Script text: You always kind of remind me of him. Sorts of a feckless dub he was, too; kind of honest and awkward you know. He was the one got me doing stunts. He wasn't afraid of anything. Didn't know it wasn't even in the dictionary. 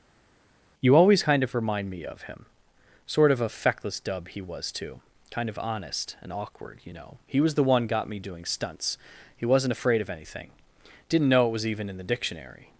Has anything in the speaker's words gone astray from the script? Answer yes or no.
yes